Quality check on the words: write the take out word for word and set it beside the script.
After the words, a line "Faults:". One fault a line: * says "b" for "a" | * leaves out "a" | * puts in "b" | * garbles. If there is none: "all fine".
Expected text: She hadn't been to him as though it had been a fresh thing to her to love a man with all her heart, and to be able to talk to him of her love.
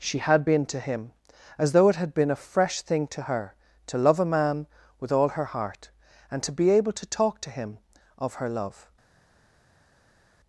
She had been to him as though it had been a fresh thing to her to love a man with all her heart, and to be able to talk to him of her love.
Faults:
* says "had" for "hadn't"